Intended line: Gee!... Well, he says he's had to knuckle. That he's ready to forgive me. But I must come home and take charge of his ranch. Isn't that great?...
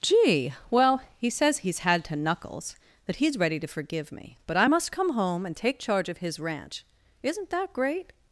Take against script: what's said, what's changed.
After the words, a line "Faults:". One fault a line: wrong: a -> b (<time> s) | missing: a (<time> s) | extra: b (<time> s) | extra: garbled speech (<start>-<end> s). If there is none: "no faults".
Gee!... Well, he says he's had to knuckles. That he's ready to forgive me. But I must come home and take charge of his ranch. Isn't that great?...
Faults:
wrong: knuckle -> knuckles (2.2 s)